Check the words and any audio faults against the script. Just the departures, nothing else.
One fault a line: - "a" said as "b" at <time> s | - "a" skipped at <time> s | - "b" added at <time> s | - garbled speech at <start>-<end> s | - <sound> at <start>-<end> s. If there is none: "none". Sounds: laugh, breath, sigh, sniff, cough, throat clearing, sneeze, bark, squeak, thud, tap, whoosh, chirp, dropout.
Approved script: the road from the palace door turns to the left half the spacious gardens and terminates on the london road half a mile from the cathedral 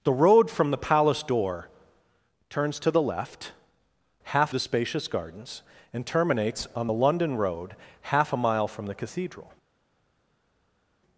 none